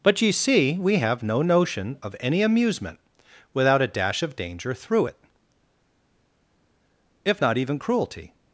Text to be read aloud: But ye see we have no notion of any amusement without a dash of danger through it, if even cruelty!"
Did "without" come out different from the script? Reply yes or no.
no